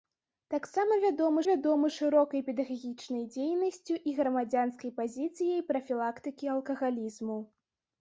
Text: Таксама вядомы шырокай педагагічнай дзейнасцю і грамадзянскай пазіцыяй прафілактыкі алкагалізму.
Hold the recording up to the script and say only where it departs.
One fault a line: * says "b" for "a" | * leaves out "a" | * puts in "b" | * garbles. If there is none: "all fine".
* puts in "вядомы"